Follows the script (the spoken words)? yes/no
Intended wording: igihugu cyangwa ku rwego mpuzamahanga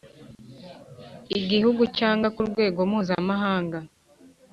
yes